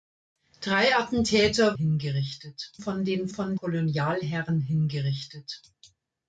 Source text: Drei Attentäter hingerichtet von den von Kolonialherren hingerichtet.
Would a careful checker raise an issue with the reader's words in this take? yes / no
no